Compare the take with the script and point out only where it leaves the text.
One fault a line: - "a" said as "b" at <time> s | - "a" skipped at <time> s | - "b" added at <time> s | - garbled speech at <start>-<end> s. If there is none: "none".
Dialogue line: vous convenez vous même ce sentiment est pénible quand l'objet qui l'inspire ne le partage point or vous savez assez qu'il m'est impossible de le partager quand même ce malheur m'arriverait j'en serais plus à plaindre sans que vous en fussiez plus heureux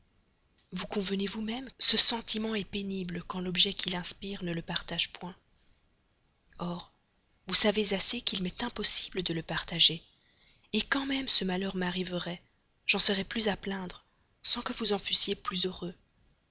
none